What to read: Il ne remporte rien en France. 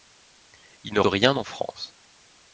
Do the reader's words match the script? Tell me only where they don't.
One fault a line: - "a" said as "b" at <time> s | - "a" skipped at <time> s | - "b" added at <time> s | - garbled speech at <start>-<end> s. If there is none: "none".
- "remporte" skipped at 1.0 s